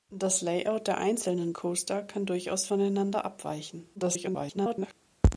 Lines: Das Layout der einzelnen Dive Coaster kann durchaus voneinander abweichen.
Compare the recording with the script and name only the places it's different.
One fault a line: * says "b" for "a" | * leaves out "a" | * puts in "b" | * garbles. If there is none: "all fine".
* leaves out "Dive"
* garbles